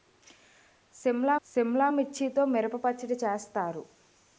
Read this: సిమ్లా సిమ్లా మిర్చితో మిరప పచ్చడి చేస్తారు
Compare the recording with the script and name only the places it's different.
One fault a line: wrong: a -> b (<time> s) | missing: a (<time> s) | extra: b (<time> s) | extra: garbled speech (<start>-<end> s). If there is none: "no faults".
no faults